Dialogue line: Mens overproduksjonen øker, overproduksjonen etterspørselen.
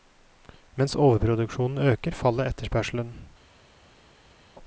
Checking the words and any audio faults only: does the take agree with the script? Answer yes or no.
no